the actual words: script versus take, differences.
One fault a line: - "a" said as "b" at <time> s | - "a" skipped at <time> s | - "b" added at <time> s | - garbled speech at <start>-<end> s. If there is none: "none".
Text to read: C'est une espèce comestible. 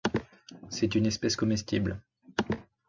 none